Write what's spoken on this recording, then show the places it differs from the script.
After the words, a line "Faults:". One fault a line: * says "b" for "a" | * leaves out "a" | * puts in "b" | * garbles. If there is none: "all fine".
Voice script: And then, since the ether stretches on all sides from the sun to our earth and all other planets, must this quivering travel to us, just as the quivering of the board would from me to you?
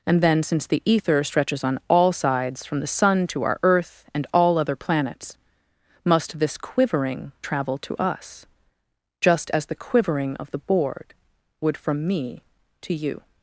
And then, since the ether stretches on all sides from the sun to our earth and all other planets, must this quivering travel to us, just as the quivering of the board would from me to you?
Faults:
all fine